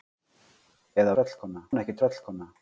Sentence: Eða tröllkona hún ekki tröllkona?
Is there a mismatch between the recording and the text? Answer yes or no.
no